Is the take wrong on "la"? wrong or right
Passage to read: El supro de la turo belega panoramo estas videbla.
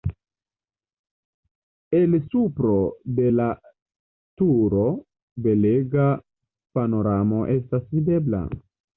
right